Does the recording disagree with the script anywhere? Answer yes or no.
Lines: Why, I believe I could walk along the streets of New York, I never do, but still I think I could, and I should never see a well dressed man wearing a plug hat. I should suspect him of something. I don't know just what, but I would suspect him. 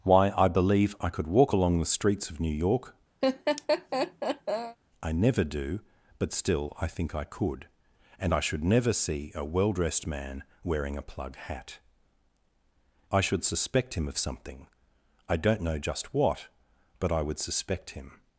no